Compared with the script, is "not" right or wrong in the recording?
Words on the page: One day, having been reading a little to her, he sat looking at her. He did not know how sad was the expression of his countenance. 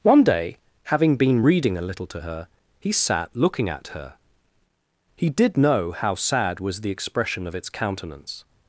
wrong